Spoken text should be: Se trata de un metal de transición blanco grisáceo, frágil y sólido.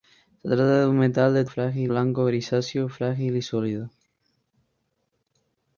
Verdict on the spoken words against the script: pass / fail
fail